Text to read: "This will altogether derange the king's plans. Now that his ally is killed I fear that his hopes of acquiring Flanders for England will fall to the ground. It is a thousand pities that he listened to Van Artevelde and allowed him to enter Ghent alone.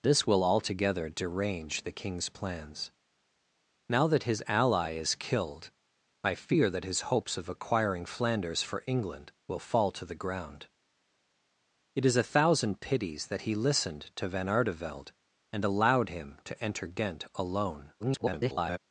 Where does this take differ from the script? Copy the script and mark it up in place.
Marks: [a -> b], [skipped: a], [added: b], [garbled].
"This will altogether derange the king's plans. Now that his ally is killed I fear that his hopes of acquiring Flanders for England will fall to the ground. It is a thousand pities that he listened to Van Artevelde and allowed him to enter Ghent alone. [garbled]